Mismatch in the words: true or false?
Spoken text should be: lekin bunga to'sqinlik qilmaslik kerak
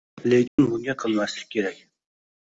true